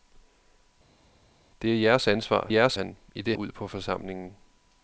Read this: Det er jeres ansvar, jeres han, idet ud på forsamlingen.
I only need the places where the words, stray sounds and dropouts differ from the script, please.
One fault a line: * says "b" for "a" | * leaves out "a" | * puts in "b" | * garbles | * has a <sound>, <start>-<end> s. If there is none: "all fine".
all fine